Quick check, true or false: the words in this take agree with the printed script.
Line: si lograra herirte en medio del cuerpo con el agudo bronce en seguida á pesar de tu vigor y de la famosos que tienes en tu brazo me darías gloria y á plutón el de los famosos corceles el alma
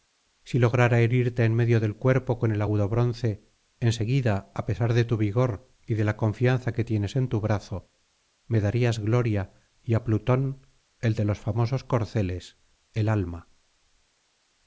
false